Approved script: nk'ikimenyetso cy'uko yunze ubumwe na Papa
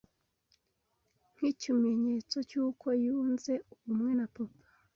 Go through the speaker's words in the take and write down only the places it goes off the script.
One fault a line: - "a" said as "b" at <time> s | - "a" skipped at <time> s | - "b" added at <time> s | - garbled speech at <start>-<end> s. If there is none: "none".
none